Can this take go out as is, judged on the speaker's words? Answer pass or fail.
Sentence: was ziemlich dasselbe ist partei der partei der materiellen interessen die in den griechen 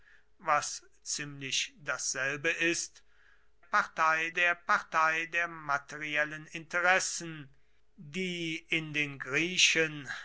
pass